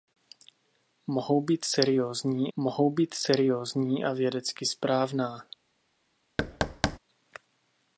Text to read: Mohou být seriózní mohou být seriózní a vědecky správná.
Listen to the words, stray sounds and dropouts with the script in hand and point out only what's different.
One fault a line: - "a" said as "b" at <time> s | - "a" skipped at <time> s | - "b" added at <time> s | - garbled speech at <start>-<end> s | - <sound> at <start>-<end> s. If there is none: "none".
- thud at 6.4-7.0 s